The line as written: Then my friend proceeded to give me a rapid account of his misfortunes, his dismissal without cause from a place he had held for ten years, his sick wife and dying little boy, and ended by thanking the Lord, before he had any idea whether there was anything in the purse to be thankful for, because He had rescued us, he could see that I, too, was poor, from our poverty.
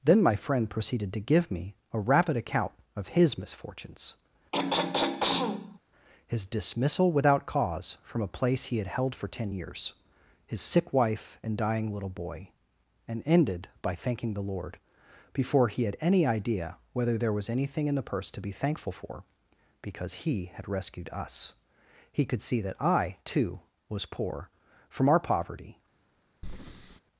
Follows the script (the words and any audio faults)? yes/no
no